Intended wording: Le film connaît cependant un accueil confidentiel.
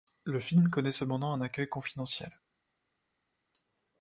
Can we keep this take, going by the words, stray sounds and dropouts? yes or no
yes